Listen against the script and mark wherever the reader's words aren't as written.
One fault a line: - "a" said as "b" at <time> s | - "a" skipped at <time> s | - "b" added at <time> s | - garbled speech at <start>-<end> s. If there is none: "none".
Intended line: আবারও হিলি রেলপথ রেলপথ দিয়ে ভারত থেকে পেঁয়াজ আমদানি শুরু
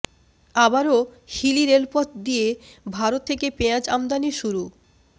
- "রেলপথ" skipped at 2.1 s